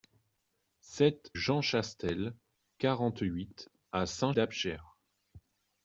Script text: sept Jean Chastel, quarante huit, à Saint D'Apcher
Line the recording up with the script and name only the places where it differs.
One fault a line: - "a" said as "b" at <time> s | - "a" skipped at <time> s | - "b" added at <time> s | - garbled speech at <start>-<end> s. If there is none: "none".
none